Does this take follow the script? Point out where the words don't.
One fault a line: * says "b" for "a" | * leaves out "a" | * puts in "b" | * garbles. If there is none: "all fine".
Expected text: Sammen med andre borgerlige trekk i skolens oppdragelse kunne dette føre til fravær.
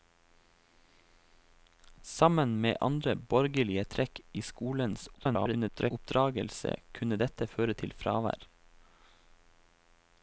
* garbles